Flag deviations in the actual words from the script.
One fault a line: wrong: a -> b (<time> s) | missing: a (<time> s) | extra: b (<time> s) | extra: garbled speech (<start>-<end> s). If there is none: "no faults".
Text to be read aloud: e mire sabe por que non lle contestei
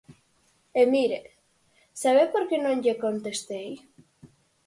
no faults